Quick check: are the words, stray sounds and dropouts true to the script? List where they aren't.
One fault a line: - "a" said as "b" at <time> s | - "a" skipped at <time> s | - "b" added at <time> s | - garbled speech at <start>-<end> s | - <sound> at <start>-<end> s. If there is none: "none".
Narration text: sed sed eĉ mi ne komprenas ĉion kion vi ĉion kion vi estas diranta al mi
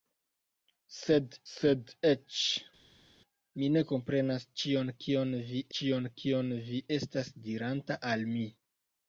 none